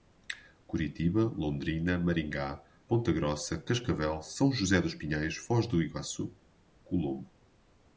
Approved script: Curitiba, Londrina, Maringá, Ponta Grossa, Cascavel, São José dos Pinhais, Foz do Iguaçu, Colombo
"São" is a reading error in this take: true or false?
false